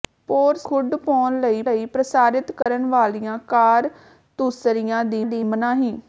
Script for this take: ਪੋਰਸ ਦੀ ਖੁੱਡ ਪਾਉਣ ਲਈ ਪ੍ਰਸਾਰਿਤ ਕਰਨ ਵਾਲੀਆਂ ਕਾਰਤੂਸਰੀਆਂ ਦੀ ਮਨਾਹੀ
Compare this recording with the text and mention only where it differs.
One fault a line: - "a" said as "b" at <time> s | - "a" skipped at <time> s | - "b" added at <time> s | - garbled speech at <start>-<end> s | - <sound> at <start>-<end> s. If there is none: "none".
- "ਦੀ" skipped at 0.7 s
- "ਲਈ" added at 1.6 s
- dropout at 2.6-2.7 s
- "ਦੀ" added at 5.2 s